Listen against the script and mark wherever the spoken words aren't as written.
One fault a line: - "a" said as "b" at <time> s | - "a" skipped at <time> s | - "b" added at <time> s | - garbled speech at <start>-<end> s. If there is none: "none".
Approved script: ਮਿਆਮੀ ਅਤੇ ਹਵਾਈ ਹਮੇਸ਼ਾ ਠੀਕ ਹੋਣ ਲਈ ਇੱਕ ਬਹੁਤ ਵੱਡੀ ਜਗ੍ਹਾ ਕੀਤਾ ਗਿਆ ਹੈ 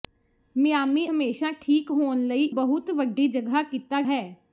- "ਅਤੇ ਹਵਾਈ" skipped at 1.1 s
- "ਇੱਕ" skipped at 2.4 s
- "ਗਿਆ" skipped at 4.0 s